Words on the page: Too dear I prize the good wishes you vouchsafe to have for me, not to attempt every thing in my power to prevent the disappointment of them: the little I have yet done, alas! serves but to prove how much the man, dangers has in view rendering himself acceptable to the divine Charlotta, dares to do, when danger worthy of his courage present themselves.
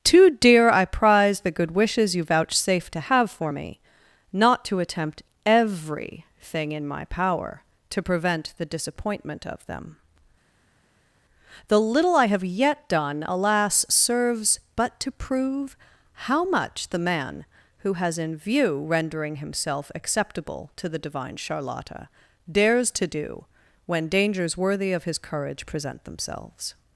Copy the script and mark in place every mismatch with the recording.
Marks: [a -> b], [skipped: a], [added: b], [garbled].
Too dear I prize the good wishes you vouchsafe to have for me, not to attempt every thing in my power to prevent the disappointment of them: the little I have yet done, alas! serves but to prove how much the man, [dangers -> who] has in view rendering himself acceptable to the divine Charlotta, dares to do, when [danger -> dangers] worthy of his courage present themselves.